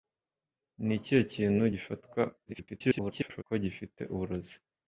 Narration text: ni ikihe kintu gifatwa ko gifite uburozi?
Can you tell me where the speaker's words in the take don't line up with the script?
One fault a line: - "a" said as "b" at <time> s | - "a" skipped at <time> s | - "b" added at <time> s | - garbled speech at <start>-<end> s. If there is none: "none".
- garbled speech at 2.4-3.4 s